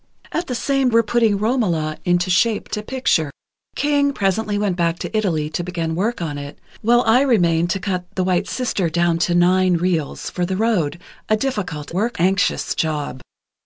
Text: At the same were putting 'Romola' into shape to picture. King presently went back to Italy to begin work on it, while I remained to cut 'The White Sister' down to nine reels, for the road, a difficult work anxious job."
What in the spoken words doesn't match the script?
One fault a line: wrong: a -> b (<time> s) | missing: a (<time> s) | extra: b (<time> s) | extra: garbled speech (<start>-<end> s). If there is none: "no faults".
no faults